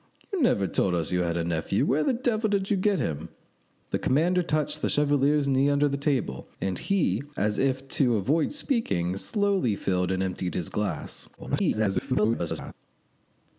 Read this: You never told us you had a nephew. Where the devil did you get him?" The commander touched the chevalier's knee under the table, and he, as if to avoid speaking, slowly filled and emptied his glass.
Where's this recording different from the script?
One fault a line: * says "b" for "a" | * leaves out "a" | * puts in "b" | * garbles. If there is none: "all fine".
* garbles